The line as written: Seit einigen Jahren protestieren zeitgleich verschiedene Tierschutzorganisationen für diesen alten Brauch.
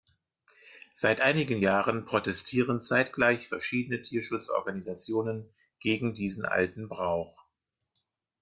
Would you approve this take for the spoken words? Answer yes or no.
no